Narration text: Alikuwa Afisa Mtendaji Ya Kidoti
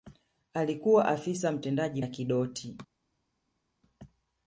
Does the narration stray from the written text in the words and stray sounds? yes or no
no